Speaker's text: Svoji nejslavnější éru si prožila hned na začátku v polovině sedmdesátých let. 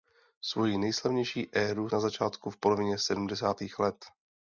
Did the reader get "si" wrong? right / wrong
wrong